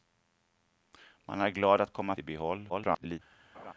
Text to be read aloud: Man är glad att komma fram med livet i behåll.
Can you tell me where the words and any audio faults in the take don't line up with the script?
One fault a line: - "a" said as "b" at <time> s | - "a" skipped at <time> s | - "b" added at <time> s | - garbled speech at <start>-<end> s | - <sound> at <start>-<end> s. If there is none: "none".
- "fram med livet" skipped at 2.1 s
- garbled speech at 2.7-3.2 s
- laugh at 3.5-3.7 s